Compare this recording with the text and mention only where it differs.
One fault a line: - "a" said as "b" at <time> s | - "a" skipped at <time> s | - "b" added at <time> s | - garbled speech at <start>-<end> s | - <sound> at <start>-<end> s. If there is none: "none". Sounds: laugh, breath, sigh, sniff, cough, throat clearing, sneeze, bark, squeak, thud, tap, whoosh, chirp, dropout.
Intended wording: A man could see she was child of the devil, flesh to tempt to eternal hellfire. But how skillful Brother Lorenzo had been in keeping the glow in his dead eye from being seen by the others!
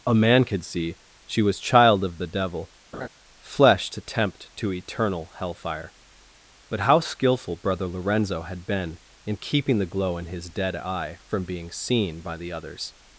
- laugh at 2.9-3.1 s